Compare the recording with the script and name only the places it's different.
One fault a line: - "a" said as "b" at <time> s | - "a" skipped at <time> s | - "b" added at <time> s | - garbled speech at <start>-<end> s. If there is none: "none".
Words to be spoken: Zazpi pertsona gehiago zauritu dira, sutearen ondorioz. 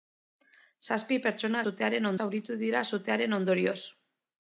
- "gehiago" said as "sutearen" at 1.7 s